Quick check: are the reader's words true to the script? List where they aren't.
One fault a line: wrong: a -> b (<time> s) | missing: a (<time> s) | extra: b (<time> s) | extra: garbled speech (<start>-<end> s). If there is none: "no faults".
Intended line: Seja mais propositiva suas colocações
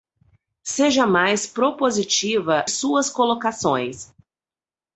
no faults